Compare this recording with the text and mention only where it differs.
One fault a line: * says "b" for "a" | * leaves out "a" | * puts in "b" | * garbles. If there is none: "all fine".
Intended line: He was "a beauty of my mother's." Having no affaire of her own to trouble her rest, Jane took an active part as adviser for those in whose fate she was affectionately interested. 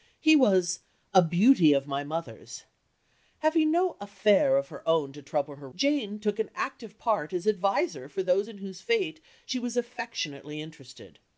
* leaves out "rest"